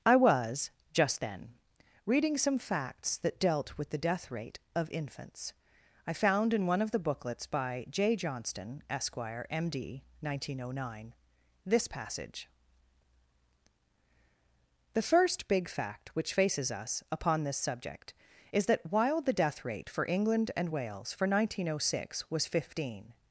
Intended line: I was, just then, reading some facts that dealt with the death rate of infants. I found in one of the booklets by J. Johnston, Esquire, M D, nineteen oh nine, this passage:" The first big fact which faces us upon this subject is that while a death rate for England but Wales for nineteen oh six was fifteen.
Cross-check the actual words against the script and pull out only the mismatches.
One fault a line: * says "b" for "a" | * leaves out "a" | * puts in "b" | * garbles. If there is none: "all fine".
* says "the" for "a"
* says "and" for "but"